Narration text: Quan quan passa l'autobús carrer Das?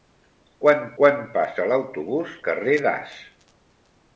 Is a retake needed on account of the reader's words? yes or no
no